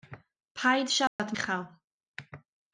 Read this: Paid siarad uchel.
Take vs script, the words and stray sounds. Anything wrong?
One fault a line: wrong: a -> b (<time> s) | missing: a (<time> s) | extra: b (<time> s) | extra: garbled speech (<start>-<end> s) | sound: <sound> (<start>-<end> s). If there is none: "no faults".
sound: dropout (1.1-1.2 s)